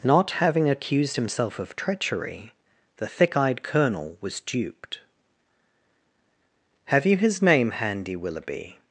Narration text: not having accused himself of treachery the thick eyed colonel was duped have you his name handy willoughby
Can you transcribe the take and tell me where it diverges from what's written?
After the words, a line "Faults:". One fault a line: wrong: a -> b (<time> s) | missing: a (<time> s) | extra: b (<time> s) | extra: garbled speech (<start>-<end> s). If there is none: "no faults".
not having accused himself of treachery the thick eyed colonel was duped have you his name handy willoughby
Faults:
no faults